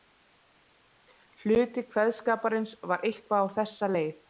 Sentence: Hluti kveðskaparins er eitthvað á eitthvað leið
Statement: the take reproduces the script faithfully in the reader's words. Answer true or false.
false